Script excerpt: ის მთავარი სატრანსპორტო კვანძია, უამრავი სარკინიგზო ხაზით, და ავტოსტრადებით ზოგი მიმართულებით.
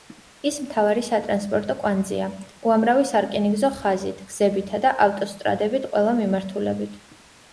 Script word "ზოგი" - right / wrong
wrong